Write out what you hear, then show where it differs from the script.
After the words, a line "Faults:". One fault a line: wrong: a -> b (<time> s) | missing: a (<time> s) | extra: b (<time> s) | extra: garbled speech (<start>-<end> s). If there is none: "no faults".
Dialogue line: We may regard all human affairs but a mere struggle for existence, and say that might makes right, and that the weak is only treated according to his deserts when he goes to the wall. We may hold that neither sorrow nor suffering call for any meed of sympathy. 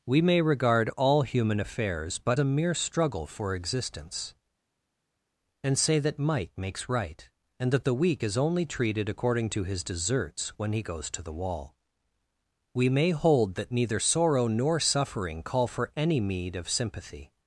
We may regard all human affairs but a mere struggle for existence, and say that might makes right, and that the weak is only treated according to his deserts when he goes to the wall. We may hold that neither sorrow nor suffering call for any meed of sympathy.
Faults:
no faults